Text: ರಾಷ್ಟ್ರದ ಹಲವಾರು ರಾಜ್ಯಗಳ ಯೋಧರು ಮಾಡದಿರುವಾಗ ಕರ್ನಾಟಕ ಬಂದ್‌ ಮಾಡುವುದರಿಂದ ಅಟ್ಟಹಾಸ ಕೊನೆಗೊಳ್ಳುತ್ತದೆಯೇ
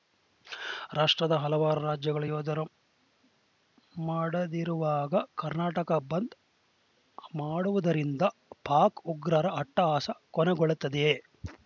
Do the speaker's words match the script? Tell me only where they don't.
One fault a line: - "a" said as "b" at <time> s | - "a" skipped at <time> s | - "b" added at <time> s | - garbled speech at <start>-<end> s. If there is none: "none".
- "ಪಾಕ್ ಉಗ್ರರ" added at 8.6 s